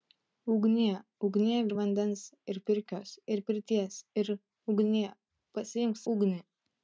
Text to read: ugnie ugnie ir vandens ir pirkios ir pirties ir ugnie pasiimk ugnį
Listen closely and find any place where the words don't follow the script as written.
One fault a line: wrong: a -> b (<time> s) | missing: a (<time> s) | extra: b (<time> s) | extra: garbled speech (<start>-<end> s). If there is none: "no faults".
no faults